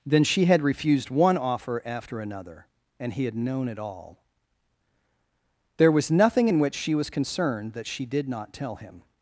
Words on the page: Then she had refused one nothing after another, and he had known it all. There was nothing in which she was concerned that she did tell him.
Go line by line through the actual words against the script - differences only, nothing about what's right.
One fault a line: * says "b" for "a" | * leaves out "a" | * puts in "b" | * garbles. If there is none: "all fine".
* says "offer" for "nothing"
* puts in "not"